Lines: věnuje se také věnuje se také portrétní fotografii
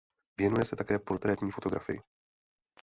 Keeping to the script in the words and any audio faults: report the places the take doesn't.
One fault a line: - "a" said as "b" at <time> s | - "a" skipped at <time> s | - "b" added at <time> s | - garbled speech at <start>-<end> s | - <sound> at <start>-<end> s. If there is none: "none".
- "věnuje se také" skipped at 1.0 s